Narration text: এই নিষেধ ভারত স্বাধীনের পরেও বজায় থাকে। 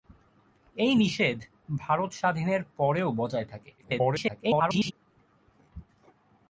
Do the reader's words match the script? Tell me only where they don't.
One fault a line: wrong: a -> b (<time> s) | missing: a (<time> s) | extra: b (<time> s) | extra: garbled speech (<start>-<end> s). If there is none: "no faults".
extra: garbled speech (3.8-4.9 s)